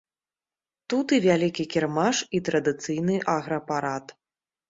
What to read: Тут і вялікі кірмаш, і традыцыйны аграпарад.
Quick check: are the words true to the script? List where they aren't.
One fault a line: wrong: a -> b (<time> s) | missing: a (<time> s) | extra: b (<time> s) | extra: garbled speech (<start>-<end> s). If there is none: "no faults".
no faults